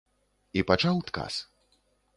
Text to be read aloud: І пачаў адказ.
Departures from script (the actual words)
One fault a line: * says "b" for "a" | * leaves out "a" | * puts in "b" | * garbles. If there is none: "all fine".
all fine